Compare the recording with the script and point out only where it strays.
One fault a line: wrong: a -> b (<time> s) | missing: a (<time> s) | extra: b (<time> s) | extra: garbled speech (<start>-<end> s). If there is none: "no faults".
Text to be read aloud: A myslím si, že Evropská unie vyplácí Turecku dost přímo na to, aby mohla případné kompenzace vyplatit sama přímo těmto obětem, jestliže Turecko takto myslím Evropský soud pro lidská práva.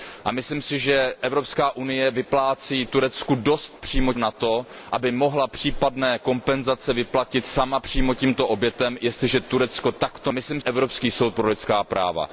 no faults